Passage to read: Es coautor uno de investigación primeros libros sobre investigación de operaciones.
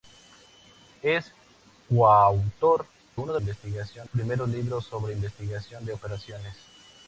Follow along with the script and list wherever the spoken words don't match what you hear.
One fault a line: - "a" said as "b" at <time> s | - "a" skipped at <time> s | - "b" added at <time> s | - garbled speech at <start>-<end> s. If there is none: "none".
none